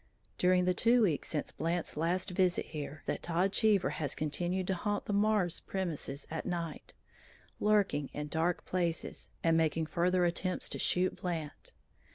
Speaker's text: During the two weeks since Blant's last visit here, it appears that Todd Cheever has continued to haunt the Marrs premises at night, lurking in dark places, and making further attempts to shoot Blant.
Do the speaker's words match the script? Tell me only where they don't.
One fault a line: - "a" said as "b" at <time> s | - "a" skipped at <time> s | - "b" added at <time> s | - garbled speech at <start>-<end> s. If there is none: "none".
- "it appears" skipped at 3.0 s